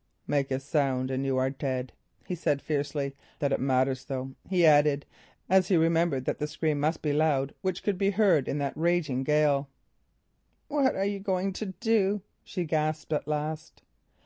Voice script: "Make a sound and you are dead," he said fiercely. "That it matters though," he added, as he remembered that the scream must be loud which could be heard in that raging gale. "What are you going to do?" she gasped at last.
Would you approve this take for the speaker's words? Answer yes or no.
yes